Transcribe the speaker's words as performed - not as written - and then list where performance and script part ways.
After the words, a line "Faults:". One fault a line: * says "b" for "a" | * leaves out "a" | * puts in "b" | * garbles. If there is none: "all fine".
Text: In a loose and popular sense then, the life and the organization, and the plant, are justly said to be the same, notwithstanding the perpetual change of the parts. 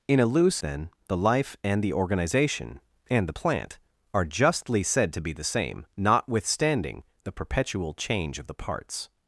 In a loose then, the life and the organization, and the plant, are justly said to be the same, notwithstanding the perpetual change of the parts.
Faults:
* leaves out "and popular sense"